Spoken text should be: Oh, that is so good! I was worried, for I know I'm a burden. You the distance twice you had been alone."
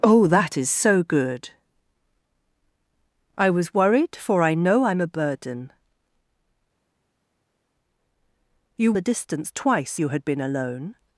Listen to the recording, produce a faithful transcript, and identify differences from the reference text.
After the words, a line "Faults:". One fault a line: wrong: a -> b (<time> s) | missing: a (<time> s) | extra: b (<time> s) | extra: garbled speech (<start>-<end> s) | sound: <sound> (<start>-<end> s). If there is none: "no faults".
Oh, that is so good! I was worried, for I know I'm a burden. You the distance twice you had been alone."
Faults:
no faults